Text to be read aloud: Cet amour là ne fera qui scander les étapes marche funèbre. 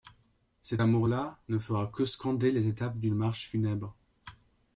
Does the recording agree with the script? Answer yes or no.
no